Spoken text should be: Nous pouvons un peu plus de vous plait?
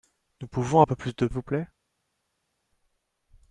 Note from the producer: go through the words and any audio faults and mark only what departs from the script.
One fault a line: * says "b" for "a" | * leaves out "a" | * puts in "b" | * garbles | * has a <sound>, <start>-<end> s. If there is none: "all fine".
all fine